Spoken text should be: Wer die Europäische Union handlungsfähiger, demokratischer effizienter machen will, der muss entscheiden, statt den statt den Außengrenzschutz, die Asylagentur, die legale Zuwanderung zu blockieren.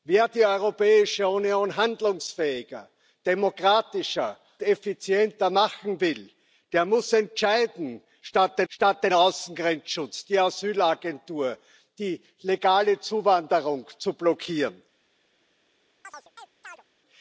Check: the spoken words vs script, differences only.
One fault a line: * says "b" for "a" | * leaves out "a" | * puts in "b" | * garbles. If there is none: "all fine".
all fine